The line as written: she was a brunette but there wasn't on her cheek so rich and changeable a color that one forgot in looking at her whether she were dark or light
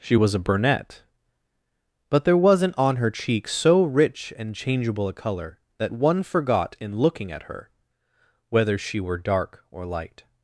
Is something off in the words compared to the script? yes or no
no